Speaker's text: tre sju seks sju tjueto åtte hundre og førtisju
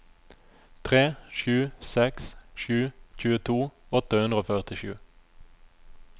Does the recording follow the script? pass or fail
pass